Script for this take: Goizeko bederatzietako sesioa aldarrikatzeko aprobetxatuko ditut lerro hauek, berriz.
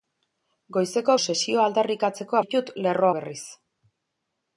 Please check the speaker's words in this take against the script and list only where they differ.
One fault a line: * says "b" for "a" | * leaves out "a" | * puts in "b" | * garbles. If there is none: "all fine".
* leaves out "bederatzietako"
* leaves out "aprobetxatuko"
* leaves out "hauek"